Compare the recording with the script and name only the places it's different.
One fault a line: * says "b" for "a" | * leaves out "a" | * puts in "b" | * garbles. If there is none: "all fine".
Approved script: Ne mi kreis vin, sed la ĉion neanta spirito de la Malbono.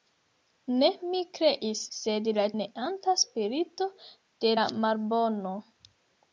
* leaves out "vin"
* leaves out "ĉion"